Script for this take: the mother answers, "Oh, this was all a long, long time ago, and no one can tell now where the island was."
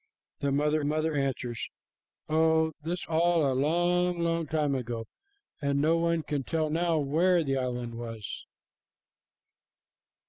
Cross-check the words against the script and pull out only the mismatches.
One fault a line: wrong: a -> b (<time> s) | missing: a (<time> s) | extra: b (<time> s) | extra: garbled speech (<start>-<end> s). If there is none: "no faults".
extra: mother (0.8 s)
missing: was (3.1 s)